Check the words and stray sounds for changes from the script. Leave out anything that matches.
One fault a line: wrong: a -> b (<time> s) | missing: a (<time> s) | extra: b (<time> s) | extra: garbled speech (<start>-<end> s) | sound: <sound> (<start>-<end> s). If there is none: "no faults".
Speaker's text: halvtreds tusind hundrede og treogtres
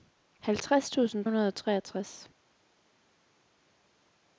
no faults